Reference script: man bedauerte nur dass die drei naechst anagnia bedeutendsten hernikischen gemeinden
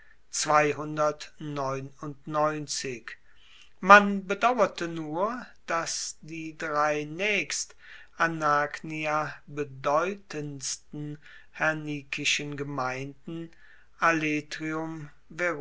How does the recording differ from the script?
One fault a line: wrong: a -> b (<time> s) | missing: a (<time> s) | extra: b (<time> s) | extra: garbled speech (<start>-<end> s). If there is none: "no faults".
no faults